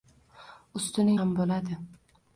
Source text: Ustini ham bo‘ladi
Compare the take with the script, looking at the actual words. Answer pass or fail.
pass